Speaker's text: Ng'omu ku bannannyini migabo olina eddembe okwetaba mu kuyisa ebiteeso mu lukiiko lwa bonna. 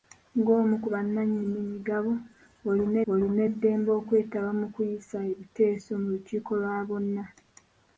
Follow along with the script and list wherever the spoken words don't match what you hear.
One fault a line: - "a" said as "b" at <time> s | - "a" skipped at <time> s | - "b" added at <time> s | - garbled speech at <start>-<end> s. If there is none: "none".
- "olina" added at 3.1 s